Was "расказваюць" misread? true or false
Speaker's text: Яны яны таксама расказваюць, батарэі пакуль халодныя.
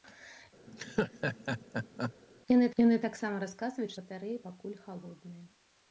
false